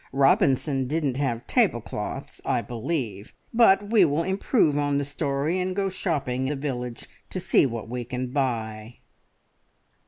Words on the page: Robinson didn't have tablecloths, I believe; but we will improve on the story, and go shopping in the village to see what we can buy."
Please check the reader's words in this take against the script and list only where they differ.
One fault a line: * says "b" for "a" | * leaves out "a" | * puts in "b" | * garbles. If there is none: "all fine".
* leaves out "in"